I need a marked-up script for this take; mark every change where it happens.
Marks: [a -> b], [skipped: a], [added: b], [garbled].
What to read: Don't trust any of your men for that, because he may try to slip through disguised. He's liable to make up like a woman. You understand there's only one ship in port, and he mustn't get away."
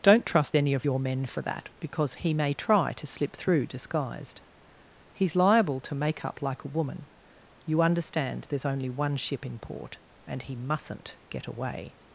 Don't trust any of your men for that, because he may try to slip through disguised. He's liable to make up like a woman. You understand there's only one ship in port, and he mustn't get away."